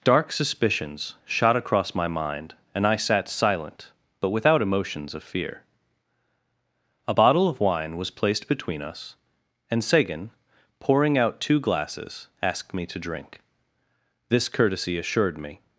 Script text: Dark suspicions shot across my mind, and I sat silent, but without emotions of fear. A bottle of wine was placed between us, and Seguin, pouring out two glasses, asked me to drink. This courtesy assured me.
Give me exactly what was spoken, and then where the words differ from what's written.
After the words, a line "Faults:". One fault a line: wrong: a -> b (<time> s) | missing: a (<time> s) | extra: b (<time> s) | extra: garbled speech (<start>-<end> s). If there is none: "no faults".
Dark suspicions shot across my mind, and I sat silent, but without emotions of fear. A bottle of wine was placed between us, and Seguin, pouring out two glasses, asked me to drink. This courtesy assured me.
Faults:
no faults